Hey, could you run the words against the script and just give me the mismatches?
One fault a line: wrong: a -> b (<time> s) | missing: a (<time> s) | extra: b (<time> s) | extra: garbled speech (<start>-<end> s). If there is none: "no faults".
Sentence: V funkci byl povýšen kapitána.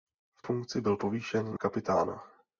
no faults